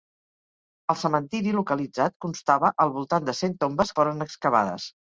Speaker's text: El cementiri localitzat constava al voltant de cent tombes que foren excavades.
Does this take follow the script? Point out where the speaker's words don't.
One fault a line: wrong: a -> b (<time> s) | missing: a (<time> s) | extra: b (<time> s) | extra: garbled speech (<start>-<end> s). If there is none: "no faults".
missing: que (4.0 s)